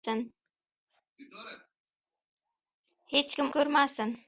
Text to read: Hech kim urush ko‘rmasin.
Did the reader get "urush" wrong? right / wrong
wrong